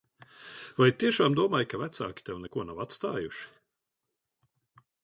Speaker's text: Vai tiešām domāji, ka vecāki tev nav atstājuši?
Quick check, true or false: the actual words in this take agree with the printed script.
false